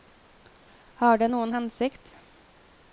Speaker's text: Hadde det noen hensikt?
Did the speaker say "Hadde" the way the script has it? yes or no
no